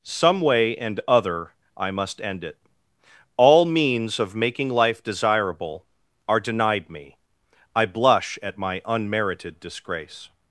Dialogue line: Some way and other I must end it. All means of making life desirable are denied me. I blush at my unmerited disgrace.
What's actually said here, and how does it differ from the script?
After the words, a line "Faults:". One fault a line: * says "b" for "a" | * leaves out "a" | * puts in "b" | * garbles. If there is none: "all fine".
Some way and other I must end it. All means of making life desirable are denied me. I blush at my unmerited disgrace.
Faults:
all fine